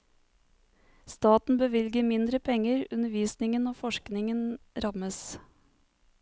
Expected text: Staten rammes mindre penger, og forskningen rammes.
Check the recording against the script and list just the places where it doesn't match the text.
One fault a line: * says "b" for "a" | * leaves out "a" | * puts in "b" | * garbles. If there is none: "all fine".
* says "bevilger" for "rammes"
* puts in "undervisningen"